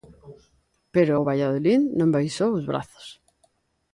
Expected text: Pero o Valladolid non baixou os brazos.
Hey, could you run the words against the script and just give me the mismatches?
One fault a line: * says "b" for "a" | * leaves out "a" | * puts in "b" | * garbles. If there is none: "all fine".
all fine